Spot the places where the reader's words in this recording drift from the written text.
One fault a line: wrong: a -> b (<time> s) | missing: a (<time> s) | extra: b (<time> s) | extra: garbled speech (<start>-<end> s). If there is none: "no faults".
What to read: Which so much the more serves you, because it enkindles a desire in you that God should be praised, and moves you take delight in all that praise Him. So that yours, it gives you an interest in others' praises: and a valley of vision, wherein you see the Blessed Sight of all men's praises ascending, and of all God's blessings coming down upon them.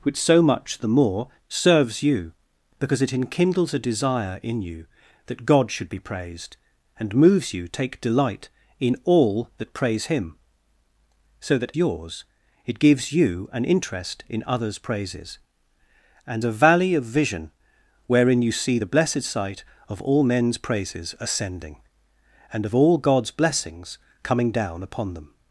no faults